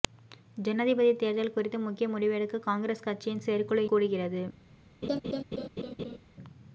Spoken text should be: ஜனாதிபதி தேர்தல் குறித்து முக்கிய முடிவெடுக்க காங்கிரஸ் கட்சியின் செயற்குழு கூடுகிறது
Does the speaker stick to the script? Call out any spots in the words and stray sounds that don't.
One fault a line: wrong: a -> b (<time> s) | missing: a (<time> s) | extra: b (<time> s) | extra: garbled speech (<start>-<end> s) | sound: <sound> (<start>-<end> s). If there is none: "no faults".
sound: laugh (5.0-6.2 s)